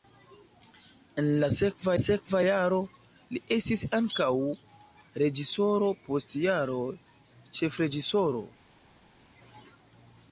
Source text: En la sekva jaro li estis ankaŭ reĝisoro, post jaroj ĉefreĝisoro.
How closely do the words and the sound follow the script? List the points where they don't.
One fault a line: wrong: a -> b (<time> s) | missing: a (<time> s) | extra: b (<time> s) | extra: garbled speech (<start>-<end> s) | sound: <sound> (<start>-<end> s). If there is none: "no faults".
extra: sekva (2.0 s)